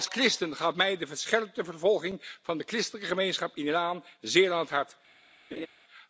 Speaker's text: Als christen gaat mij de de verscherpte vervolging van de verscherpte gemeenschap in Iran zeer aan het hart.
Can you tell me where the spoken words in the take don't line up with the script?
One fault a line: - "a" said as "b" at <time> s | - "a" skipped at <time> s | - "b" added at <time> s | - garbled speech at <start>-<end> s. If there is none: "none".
- "de" skipped at 1.1 s
- "verscherpte" said as "christelijke" at 2.6 s